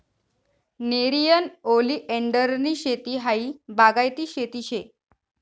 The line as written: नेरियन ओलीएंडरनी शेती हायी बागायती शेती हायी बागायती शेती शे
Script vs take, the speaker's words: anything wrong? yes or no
yes